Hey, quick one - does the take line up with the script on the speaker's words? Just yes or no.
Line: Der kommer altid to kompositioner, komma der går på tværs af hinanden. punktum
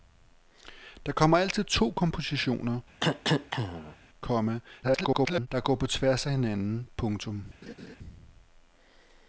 no